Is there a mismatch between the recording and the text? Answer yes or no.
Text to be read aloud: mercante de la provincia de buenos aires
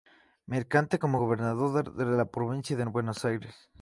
yes